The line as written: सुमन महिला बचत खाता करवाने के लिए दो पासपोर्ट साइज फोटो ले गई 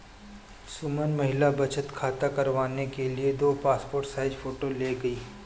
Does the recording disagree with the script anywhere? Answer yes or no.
no